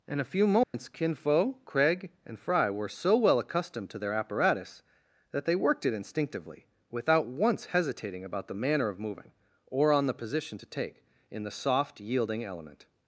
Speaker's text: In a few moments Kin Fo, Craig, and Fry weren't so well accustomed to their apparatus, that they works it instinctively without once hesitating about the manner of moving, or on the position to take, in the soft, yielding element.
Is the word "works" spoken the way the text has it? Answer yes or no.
no